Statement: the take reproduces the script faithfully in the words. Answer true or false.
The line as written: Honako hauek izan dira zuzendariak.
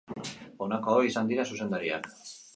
true